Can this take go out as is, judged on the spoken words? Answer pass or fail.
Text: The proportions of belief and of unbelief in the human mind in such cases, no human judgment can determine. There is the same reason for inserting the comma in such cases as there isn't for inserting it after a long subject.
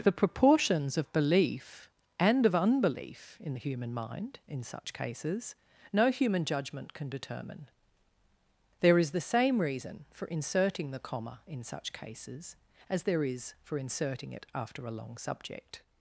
fail